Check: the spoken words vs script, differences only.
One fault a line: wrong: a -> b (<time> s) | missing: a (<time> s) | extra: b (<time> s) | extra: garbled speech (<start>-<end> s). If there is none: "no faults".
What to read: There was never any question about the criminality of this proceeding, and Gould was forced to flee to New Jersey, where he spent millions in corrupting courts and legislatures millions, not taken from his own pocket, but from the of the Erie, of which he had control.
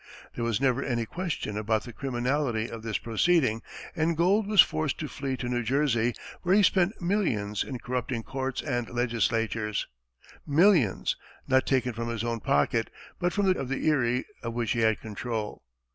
no faults